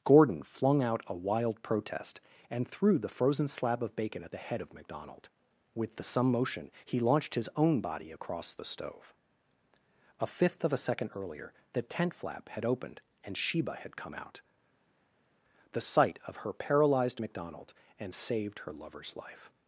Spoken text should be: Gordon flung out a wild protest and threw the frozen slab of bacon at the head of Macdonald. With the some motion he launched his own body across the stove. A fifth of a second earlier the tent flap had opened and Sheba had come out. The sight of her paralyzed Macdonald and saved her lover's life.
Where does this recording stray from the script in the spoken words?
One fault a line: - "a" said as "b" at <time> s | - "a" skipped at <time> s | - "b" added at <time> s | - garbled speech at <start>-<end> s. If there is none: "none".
none